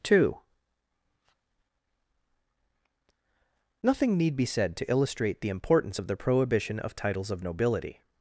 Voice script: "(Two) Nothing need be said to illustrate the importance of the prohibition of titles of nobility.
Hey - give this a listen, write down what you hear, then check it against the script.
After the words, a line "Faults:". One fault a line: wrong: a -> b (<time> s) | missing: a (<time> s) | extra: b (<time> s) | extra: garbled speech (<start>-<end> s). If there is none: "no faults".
"(Two) Nothing need be said to illustrate the importance of the prohibition of titles of nobility.
Faults:
no faults